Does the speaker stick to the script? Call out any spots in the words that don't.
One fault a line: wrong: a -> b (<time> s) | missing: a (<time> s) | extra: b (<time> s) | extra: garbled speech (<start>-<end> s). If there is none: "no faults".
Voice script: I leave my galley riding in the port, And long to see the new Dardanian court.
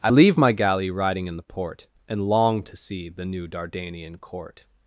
no faults